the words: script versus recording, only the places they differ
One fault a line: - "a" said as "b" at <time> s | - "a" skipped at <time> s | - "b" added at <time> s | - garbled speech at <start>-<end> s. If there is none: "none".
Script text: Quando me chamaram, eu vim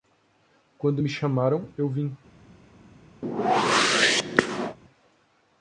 none